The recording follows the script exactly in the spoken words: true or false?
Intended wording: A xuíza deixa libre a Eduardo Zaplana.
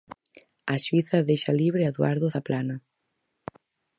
true